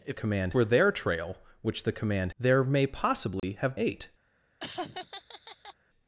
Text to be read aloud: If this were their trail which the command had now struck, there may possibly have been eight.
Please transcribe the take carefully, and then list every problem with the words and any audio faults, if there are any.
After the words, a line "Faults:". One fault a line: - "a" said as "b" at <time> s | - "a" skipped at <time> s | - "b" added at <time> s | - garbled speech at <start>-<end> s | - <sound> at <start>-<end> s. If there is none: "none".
If command were their trail which the command there may possibly have eight.
Faults:
- "this" said as "command" at 0.1 s
- "had now struck" skipped at 2.3 s
- dropout at 3.4-3.4 s
- "been" skipped at 3.8 s
- laugh at 4.6-5.7 s